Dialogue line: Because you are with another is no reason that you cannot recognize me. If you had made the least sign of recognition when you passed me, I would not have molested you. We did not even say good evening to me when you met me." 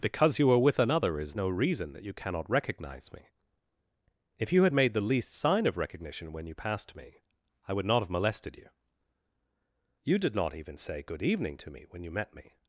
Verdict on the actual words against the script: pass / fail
fail